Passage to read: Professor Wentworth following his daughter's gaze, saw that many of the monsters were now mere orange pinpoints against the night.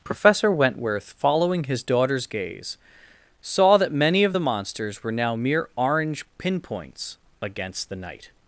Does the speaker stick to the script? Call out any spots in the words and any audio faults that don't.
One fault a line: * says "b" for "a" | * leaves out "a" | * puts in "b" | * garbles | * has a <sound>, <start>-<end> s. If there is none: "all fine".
all fine